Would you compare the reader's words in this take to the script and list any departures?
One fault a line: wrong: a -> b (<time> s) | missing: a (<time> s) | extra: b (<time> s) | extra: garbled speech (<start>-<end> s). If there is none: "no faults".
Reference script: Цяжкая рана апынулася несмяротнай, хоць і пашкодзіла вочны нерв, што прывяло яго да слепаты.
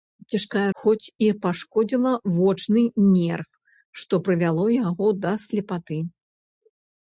missing: рана апынулася несмяротнай (0.6 s)